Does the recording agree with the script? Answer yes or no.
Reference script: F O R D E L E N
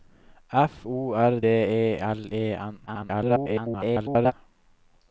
no